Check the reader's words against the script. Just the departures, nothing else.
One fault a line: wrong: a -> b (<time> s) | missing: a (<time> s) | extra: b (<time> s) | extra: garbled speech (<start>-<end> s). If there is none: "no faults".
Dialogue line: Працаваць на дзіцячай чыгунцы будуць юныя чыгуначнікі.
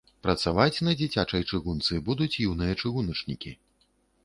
no faults